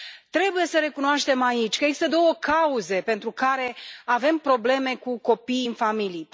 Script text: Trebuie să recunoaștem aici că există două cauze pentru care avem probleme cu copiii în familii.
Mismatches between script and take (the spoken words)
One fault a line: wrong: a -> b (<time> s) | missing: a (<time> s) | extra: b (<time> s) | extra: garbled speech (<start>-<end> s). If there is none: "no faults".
no faults